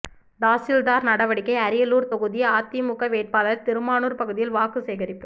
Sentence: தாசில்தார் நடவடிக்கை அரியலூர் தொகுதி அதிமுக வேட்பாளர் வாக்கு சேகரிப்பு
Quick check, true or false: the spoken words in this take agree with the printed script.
false